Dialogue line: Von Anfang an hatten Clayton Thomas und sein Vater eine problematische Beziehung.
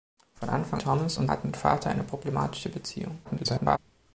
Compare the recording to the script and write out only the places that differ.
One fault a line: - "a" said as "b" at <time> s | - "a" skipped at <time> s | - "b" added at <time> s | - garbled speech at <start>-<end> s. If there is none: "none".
- "an hatten Clayton" skipped at 0.8 s
- "sein" said as "hatten" at 1.3 s
- garbled speech at 3.2-3.8 s